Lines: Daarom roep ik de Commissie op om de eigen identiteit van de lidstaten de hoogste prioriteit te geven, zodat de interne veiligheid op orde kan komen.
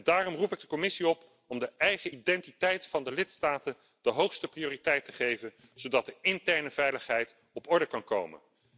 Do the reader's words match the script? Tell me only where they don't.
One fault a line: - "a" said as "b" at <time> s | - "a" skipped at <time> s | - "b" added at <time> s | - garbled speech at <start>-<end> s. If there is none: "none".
none